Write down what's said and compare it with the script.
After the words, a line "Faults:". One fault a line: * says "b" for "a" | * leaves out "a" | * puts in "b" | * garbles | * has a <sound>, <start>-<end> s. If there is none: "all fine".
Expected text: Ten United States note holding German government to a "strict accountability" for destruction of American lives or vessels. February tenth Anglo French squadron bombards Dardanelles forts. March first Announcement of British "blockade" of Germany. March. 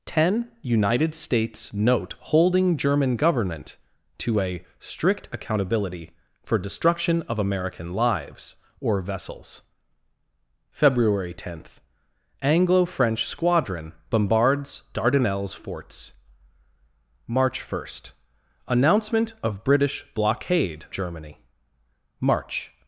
Ten United States note holding German government to a "strict accountability" for destruction of American lives or vessels. February tenth Anglo French squadron bombards Dardanelles forts. March first Announcement of British "blockade" Germany. March.
Faults:
* leaves out "of"